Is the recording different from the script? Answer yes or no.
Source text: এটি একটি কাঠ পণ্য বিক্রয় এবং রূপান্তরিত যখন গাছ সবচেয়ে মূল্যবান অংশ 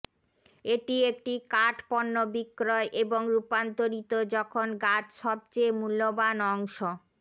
no